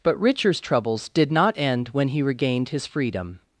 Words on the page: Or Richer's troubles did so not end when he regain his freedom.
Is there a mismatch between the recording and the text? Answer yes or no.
yes